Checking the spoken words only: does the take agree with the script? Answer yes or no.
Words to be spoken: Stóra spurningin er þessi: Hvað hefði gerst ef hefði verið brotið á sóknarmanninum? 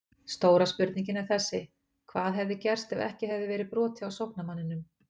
no